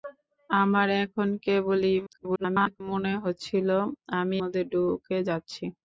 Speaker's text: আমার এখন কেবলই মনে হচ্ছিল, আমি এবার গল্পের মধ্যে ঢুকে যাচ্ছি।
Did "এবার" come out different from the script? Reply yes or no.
yes